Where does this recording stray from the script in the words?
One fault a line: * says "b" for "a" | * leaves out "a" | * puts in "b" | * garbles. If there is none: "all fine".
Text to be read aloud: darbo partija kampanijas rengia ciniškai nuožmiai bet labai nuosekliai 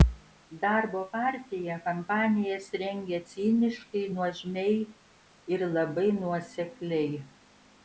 * says "ir" for "bet"